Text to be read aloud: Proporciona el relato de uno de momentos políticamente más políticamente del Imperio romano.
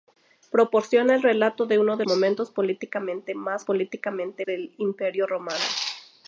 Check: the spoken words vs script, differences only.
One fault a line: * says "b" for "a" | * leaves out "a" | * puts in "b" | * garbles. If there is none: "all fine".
all fine